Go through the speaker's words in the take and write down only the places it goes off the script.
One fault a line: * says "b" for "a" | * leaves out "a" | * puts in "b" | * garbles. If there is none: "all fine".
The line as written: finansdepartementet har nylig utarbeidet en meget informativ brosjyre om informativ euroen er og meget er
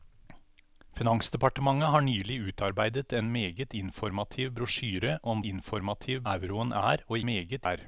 all fine